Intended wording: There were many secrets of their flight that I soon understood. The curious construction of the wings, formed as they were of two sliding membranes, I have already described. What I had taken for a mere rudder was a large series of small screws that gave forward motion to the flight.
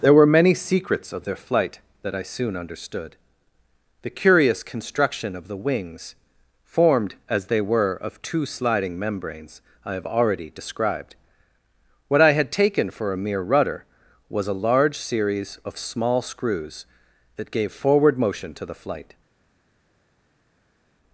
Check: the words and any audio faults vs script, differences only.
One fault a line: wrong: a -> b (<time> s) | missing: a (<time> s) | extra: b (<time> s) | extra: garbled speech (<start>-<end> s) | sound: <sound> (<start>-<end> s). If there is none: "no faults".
no faults